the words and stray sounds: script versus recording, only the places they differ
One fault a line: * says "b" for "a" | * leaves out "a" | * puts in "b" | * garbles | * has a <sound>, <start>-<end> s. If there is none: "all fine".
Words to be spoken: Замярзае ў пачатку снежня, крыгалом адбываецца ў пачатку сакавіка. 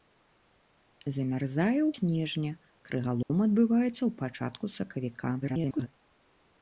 * leaves out "пачатку"
* has a dropout, 3.2-3.3 s
* garbles